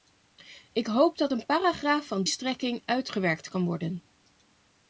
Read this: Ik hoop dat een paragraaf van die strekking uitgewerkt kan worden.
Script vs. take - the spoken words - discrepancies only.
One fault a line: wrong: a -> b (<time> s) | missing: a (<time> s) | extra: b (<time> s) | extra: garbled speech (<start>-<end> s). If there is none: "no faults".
missing: die (2.2 s)